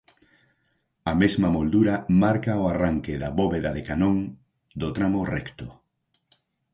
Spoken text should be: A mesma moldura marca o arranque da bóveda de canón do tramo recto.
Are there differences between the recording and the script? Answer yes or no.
no